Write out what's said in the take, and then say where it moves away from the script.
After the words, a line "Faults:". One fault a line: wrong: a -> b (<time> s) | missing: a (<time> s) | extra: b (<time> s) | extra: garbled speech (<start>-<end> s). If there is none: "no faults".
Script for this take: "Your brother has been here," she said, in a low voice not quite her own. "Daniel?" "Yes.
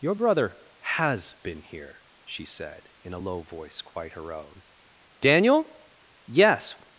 "Your brother has been here," she said, in a low voice quite her own. "Daniel?" "Yes.
Faults:
missing: not (3.8 s)